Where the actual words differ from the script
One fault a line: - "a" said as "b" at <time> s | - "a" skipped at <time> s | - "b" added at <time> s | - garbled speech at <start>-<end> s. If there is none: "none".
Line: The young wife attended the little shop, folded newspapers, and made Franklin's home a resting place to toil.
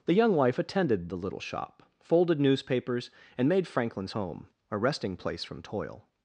- "to" said as "from" at 5.4 s